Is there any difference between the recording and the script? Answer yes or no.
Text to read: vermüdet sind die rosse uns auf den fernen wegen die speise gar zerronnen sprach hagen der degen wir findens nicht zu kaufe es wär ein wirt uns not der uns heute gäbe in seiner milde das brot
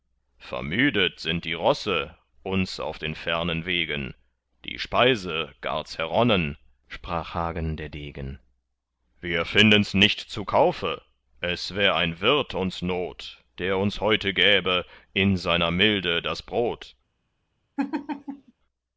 no